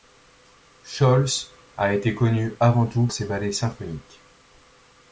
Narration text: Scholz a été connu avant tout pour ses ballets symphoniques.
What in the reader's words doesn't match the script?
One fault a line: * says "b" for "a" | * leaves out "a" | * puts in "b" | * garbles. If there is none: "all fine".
* leaves out "pour"